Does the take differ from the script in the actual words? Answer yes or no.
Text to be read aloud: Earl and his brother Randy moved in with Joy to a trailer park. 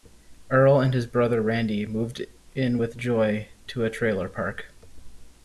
no